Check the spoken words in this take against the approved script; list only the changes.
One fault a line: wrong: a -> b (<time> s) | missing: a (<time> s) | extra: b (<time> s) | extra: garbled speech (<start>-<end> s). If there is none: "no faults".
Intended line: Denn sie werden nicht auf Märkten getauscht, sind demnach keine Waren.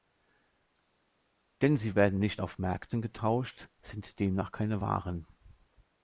no faults